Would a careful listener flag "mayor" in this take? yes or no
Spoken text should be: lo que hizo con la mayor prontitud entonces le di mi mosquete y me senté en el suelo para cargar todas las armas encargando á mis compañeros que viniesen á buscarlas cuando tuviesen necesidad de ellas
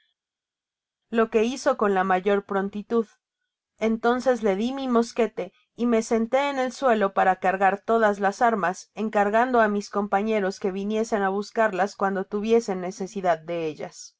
no